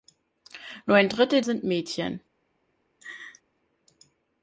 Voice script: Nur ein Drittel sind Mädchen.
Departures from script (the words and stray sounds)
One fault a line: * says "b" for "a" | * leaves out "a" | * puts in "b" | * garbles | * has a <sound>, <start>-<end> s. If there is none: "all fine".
* has a laugh, 3.0-3.4 s